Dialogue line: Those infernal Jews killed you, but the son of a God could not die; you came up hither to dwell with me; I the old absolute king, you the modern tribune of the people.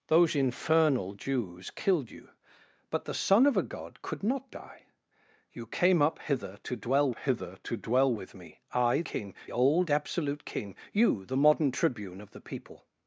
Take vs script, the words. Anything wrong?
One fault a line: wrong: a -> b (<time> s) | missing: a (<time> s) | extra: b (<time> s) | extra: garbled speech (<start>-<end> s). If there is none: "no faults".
extra: hither to dwell (7.1 s)
wrong: the -> king (9.0 s)